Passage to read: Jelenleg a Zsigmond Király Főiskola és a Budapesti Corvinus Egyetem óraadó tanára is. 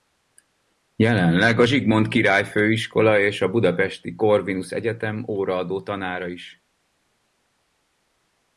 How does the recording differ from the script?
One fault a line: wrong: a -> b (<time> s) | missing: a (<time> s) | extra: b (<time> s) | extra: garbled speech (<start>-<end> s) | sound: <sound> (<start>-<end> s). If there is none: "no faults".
no faults